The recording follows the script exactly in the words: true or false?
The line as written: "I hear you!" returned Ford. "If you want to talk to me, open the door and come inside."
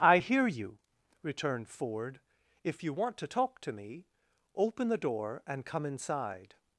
true